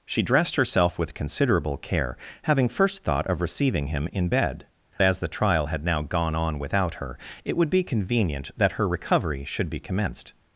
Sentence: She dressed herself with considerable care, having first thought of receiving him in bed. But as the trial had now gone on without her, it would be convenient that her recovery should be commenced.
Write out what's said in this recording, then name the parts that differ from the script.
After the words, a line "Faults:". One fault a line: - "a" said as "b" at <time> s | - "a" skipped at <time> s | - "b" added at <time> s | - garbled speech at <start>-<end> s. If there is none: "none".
She dressed herself with considerable care, having first thought of receiving him in bed. As the trial had now gone on without her, it would be convenient that her recovery should be commenced.
Faults:
- "But" skipped at 4.7 s